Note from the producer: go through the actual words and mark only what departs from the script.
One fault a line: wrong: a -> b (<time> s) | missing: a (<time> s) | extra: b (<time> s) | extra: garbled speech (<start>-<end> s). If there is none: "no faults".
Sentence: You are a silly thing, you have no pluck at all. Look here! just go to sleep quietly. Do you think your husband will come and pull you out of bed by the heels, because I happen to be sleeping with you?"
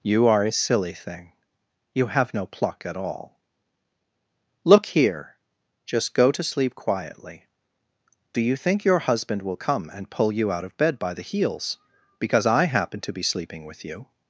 no faults